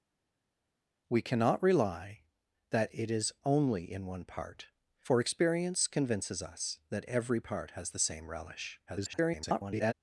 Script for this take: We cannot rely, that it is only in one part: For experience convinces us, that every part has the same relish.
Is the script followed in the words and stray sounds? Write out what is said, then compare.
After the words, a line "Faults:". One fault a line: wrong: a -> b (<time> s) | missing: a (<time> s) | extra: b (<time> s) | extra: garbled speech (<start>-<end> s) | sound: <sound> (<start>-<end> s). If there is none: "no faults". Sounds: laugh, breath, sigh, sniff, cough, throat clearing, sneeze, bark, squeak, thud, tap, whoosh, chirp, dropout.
We cannot rely, that it is only in one part: For experience convinces us, that every part has the same relish. [garbled]
Faults:
extra: garbled speech (8.9-9.9 s)